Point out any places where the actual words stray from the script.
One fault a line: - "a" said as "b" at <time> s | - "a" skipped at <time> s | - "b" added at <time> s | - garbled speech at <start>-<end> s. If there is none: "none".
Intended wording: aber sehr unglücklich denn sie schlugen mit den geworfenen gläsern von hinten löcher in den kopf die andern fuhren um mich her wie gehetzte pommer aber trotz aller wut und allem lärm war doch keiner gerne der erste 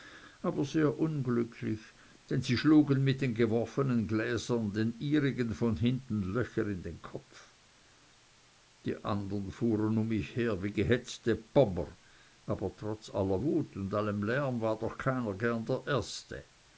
- "den ihrigen" added at 4.7 s